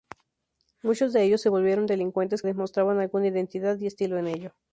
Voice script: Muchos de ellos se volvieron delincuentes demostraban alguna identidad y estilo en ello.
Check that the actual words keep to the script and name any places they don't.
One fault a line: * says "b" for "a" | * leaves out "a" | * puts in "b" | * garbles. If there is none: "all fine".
all fine